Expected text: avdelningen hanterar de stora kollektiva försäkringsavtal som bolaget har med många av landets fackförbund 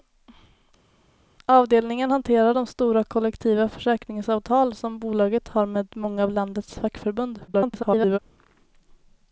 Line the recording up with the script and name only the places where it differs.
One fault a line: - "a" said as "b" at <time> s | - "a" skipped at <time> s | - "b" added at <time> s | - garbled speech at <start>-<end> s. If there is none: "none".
- garbled speech at 7.5-8.2 s